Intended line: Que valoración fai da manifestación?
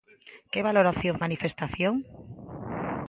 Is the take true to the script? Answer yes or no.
no